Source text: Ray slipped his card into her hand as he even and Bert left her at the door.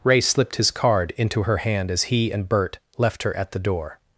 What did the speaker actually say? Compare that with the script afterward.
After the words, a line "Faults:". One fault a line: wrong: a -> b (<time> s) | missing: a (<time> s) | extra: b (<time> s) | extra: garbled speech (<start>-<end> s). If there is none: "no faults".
Ray slipped his card into her hand as he and Bert left her at the door.
Faults:
missing: even (2.3 s)